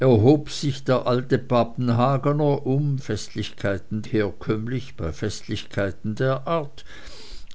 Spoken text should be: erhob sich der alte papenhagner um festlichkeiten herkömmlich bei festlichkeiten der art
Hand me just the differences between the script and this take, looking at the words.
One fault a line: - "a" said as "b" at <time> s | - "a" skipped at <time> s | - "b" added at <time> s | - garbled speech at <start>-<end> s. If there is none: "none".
none